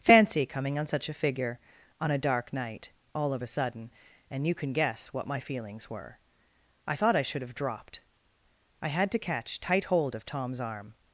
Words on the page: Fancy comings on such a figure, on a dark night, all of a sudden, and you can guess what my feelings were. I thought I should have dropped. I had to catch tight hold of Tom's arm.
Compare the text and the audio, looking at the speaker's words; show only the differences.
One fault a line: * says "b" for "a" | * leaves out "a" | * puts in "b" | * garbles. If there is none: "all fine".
* says "coming" for "comings"